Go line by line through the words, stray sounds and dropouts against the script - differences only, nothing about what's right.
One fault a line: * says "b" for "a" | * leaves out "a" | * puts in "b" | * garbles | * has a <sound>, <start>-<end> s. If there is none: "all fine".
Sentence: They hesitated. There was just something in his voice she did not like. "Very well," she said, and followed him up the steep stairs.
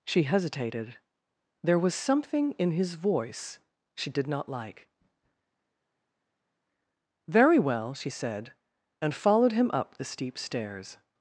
* says "She" for "They"
* leaves out "just"